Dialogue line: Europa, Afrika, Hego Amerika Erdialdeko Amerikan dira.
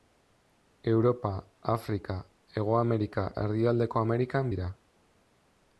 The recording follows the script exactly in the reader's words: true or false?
true